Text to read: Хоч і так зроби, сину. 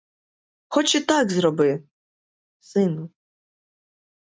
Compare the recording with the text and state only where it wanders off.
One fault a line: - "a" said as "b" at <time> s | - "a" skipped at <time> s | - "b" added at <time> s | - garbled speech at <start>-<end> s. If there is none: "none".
none